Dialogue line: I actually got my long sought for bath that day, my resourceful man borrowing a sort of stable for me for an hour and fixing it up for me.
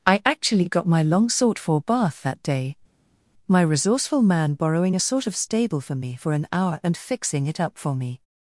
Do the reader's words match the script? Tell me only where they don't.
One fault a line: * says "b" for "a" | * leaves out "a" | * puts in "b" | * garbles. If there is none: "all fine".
all fine